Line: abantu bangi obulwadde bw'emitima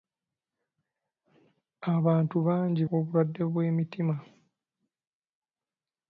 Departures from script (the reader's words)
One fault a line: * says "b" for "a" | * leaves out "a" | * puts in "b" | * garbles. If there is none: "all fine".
all fine